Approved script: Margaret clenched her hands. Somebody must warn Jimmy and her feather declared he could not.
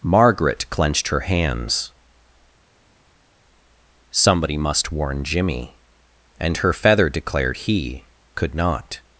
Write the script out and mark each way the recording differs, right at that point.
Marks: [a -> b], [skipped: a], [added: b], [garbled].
Margaret clenched her hands. Somebody must warn Jimmy and her feather declared he could not.